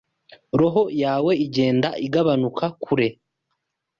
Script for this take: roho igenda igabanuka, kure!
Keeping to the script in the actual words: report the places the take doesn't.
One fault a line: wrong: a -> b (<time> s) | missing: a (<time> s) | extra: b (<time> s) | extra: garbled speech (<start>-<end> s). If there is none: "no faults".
extra: yawe (1.0 s)